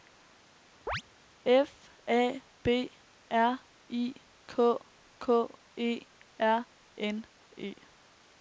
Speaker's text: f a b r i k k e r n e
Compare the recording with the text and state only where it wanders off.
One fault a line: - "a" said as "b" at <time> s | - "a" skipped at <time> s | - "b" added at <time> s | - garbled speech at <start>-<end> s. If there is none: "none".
none